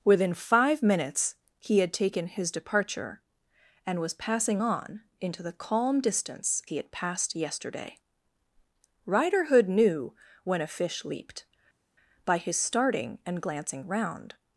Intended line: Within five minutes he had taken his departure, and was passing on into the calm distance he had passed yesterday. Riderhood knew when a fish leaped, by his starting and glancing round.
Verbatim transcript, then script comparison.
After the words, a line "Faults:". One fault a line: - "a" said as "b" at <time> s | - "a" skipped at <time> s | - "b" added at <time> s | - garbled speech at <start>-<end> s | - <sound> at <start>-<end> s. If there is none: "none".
Within five minutes he had taken his departure, and was passing on into the calm distance he had passed yesterday. Riderhood knew when a fish leaped, by his starting and glancing round.
Faults:
none